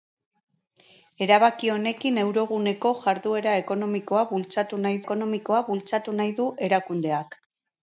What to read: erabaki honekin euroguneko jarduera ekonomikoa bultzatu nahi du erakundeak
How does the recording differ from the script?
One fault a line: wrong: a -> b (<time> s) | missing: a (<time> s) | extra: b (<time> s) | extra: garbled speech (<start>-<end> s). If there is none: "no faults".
extra: ekonomikoa bultzatu nahi (5.1 s)